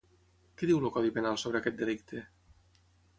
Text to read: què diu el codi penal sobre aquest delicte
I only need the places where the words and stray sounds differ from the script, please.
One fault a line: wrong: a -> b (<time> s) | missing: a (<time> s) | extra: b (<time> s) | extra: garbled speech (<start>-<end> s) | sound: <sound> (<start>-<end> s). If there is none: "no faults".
no faults